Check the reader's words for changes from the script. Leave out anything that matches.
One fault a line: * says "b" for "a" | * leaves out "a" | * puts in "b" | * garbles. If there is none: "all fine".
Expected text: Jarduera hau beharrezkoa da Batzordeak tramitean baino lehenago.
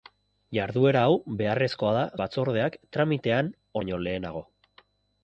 all fine